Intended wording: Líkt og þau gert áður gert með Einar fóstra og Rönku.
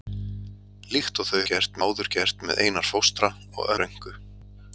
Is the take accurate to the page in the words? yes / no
yes